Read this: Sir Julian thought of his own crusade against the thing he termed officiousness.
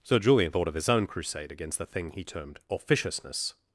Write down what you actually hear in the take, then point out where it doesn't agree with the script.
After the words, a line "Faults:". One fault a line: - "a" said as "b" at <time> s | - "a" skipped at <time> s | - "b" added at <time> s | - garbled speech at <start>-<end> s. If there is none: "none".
Sir Julian thought of his own crusade against the thing he termed officiousness.
Faults:
none